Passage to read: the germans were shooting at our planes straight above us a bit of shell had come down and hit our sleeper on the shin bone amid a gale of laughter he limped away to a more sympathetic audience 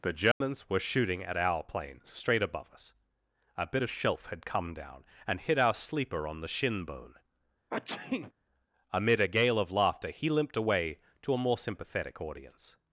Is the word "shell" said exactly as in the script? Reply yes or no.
no